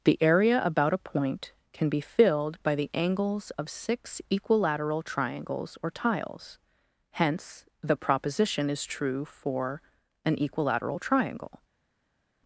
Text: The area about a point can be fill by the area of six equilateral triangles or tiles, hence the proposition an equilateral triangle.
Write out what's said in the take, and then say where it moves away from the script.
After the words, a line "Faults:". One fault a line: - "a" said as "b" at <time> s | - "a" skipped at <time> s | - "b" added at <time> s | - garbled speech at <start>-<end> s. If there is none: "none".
The area about a point can be filled by the angles of six equilateral triangles or tiles, hence the proposition is true for an equilateral triangle.
Faults:
- "fill" said as "filled" at 2.0 s
- "area" said as "angles" at 2.9 s
- "is true for" added at 8.7 s